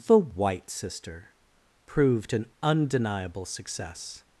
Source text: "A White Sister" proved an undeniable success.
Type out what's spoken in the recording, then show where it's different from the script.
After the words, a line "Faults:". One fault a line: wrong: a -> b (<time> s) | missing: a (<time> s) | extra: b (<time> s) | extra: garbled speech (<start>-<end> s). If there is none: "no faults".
"The White Sister" proved an undeniable success.
Faults:
wrong: A -> The (0.1 s)